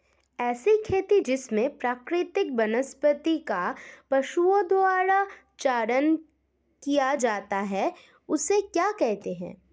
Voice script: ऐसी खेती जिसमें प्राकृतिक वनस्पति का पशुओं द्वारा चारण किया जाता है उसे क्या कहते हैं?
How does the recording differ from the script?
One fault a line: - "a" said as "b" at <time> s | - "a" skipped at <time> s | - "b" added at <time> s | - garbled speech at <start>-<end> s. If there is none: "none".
none